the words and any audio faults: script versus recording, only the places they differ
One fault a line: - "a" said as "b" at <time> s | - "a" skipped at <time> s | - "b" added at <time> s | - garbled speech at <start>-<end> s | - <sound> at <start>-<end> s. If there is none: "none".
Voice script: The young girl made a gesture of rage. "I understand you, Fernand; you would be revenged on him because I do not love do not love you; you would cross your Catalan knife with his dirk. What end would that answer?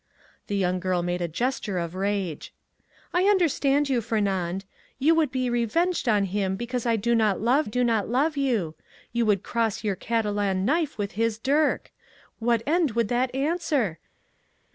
none